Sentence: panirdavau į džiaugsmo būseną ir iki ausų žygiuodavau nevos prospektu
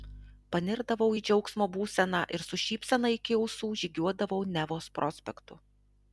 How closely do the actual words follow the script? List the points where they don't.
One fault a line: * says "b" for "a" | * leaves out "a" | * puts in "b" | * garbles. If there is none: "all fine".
* puts in "su šypsena"